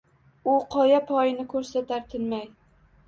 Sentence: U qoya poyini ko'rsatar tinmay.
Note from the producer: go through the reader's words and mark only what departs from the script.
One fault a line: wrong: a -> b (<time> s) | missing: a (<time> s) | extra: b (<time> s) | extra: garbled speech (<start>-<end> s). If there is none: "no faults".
no faults